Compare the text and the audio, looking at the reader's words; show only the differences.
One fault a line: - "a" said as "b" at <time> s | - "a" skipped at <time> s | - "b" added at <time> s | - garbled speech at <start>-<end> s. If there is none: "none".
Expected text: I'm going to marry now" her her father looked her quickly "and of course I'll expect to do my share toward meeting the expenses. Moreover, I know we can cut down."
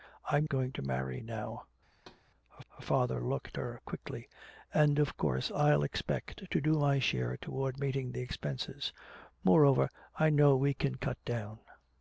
none